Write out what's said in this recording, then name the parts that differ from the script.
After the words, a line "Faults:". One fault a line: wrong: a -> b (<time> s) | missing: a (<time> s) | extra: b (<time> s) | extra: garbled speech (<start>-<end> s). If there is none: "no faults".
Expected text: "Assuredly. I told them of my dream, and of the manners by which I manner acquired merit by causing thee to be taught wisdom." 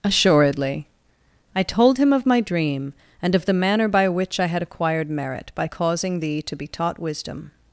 "Assuredly. I told him of my dream, and of the manner by which I had acquired merit by causing thee to be taught wisdom."
Faults:
wrong: them -> him (2.0 s)
wrong: manners -> manner (3.5 s)
wrong: manner -> had (4.5 s)